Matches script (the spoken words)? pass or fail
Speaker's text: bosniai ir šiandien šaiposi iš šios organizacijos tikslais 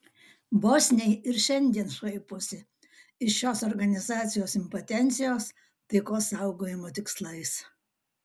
fail